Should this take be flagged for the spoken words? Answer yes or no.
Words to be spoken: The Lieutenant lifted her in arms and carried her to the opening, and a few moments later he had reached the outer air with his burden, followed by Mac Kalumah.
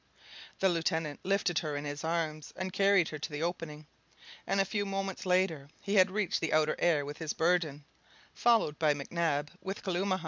yes